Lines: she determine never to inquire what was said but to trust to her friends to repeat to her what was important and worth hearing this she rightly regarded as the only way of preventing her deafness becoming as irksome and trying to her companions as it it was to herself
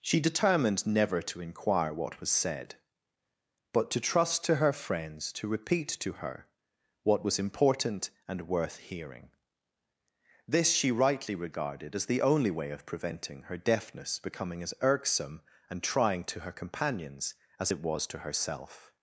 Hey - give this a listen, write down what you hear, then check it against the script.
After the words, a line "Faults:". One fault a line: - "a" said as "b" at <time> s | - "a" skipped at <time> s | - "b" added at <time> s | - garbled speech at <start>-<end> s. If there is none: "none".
she determined never to inquire what was said but to trust to her friends to repeat to her what was important and worth hearing this she rightly regarded as the only way of preventing her deafness becoming as irksome and trying to her companions as it was to herself
Faults:
- "determine" said as "determined" at 0.2 s
- "it" skipped at 17.8 s